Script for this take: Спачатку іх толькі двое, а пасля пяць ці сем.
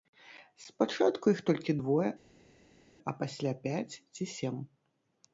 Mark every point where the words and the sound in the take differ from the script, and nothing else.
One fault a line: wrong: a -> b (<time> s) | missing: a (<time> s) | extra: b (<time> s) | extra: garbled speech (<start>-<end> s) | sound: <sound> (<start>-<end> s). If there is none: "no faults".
no faults